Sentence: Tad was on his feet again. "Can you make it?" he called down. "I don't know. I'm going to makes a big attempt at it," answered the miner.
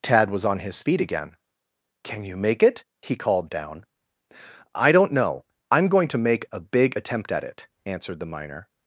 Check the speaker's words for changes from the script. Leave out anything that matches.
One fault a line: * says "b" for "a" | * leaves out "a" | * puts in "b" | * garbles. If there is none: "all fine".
* says "make" for "makes"